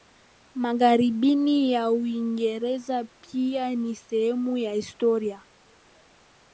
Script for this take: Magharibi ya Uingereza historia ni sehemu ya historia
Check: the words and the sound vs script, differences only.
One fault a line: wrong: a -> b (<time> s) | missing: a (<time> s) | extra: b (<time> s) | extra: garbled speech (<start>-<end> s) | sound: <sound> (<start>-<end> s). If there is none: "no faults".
wrong: historia -> pia (3.0 s)